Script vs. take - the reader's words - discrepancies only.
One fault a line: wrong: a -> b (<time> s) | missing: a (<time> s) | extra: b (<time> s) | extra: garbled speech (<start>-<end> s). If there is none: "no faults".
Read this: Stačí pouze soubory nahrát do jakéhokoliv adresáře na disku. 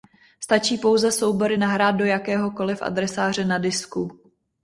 no faults